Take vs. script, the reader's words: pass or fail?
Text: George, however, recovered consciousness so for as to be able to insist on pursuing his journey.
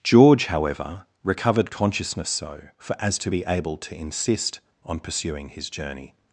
pass